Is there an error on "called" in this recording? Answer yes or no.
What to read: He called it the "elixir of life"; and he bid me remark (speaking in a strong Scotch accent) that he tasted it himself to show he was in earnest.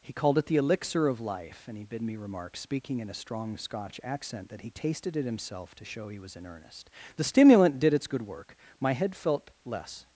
no